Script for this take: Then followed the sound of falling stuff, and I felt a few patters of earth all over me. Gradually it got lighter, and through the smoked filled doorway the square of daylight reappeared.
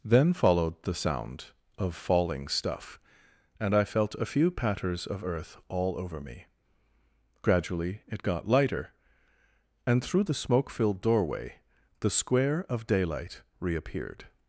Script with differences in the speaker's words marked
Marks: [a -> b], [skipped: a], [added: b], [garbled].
Then followed the sound of falling stuff, and I felt a few patters of earth all over me. Gradually it got lighter, and through the [smoked -> smoke] filled doorway the square of daylight reappeared.